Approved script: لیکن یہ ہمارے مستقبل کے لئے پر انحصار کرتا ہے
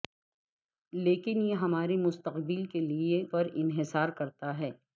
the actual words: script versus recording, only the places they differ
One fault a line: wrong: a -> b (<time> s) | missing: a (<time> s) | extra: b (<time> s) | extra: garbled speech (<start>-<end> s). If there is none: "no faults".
no faults